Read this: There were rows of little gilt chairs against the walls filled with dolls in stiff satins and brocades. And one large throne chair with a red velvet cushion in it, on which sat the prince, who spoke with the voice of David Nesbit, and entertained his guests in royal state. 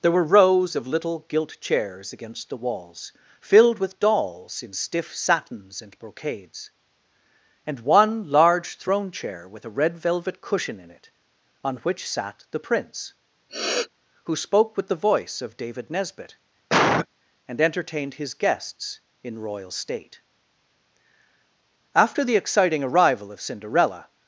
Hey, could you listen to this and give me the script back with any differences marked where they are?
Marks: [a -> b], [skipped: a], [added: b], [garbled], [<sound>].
There were rows of little gilt chairs against the walls filled with dolls in stiff satins and brocades. And one large throne chair with a red velvet cushion in it, on which sat the prince, [sniff] who spoke with the voice of David Nesbit, [cough] and entertained his guests in royal state. [added: After the exciting arrival of Cinderella]